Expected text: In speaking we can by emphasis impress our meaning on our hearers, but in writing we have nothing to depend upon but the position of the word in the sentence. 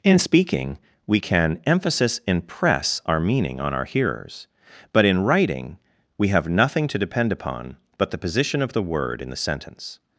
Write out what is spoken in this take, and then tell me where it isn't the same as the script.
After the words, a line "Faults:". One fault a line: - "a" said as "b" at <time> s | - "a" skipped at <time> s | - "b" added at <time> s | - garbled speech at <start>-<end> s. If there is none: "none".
In speaking we can emphasis impress our meaning on our hearers, but in writing we have nothing to depend upon but the position of the word in the sentence.
Faults:
- "by" skipped at 1.6 s